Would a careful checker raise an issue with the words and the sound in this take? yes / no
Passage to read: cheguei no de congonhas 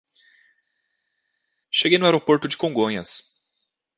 yes